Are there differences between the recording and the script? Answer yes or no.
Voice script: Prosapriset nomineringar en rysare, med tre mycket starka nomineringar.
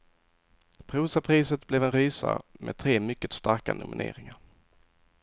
yes